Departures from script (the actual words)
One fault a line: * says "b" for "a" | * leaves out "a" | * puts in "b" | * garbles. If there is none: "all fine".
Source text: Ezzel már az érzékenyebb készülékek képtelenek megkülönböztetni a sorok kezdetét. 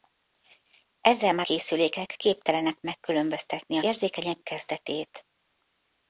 * leaves out "az érzékenyebb"
* says "érzékenyebb" for "sorok"